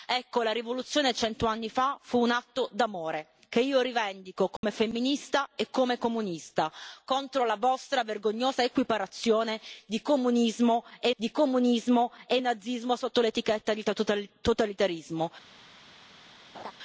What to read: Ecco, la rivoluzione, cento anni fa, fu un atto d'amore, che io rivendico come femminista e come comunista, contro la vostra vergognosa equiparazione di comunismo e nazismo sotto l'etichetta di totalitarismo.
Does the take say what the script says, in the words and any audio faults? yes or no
no